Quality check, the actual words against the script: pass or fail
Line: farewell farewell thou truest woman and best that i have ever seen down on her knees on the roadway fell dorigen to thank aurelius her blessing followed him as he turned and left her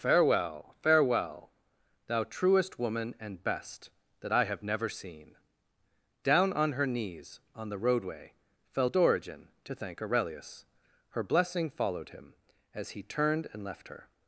fail